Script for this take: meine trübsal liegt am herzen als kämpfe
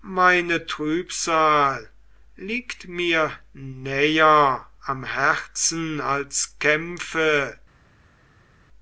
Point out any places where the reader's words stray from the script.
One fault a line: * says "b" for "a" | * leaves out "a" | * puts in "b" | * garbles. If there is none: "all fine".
* puts in "mir näher"